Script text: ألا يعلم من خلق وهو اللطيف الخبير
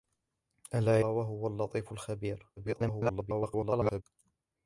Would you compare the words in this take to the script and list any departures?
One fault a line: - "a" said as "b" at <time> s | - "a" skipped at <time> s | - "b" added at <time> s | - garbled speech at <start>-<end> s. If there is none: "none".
- "يعلم من خلق" skipped at 1.1 s
- garbled speech at 2.6-4.0 s